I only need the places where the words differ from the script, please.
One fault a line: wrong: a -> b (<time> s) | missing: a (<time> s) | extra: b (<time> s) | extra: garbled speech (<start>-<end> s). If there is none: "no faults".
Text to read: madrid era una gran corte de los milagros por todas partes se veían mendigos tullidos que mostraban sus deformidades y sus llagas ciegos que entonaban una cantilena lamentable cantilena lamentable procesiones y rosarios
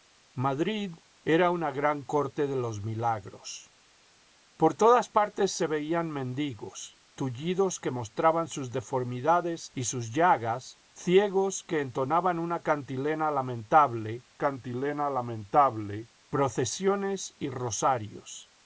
no faults